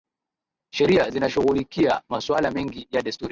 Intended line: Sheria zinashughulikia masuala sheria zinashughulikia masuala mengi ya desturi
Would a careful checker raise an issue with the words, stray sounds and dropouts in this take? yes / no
yes